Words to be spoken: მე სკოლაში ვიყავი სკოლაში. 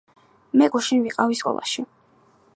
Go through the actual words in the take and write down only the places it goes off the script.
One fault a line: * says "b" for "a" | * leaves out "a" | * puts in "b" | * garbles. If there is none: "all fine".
* says "გუშინ" for "სკოლაში"